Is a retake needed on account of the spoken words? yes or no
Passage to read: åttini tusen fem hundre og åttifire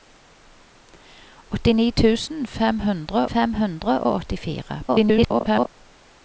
yes